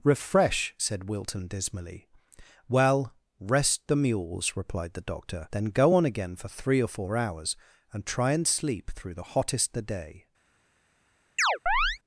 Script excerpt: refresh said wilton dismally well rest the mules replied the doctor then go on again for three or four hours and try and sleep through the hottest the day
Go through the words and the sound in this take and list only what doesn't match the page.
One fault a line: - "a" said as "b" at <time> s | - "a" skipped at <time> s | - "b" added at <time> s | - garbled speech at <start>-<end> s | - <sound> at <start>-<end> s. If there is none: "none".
- chirp at 11.4-12.0 s